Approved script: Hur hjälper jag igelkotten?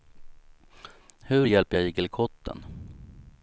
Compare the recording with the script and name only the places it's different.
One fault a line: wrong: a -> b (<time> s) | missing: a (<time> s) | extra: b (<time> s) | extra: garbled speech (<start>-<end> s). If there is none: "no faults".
no faults